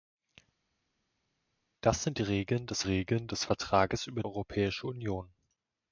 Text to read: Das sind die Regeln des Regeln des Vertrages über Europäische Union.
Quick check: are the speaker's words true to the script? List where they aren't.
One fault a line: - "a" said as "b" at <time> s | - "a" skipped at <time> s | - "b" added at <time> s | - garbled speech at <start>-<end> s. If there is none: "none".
none